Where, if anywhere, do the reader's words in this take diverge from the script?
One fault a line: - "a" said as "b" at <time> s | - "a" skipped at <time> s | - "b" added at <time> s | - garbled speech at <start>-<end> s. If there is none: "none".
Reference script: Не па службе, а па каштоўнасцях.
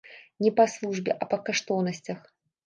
none